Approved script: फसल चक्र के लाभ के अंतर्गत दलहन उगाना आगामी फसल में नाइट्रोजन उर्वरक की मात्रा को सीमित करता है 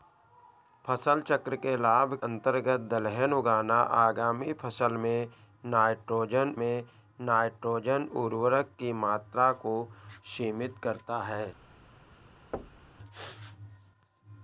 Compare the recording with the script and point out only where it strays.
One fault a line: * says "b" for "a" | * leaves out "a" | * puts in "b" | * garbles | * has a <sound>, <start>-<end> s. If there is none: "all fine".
* leaves out "के"
* puts in "में नाइट्रोजन"
* has a thud, 12.5-13.0 s